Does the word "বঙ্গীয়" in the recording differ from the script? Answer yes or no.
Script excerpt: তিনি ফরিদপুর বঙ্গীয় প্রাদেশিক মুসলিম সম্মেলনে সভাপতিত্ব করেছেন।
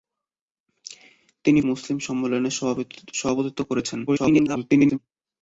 yes